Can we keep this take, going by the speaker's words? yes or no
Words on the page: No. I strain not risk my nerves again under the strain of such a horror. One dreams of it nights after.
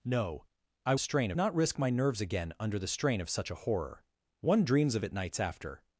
yes